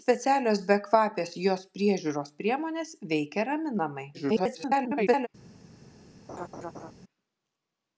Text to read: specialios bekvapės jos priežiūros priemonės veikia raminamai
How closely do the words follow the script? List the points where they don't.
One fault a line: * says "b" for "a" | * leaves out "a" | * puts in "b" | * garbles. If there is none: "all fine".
* garbles